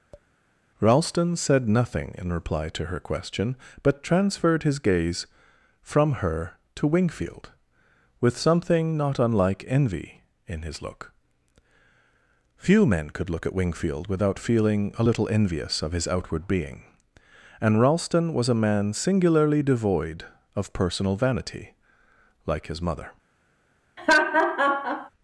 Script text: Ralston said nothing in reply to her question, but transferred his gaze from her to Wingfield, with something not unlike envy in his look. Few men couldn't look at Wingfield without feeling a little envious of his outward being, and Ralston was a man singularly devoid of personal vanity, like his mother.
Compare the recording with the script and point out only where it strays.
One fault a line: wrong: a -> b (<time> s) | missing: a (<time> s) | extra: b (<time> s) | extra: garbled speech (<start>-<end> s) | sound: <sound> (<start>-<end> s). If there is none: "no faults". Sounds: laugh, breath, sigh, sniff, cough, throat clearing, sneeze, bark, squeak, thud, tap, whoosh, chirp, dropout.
sound: tap (0.1-0.3 s)
wrong: couldn't -> could (13.1 s)
sound: laugh (24.0-25.1 s)